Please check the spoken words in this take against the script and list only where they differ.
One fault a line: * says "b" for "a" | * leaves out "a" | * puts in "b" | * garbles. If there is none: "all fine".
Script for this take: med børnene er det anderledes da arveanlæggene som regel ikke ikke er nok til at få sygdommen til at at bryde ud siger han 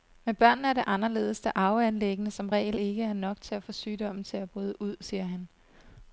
* leaves out "ikke"
* leaves out "at"